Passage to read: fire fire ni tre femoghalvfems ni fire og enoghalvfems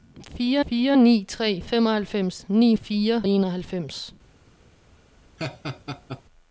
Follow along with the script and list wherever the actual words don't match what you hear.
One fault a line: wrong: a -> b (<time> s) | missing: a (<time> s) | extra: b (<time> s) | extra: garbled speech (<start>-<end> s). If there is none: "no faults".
no faults